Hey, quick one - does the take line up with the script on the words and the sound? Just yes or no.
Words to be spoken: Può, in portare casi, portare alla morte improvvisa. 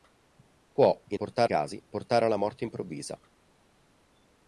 yes